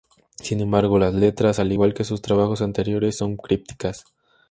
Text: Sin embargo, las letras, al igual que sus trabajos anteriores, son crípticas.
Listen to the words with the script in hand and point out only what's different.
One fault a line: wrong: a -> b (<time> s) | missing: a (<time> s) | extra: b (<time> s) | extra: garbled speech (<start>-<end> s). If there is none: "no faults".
no faults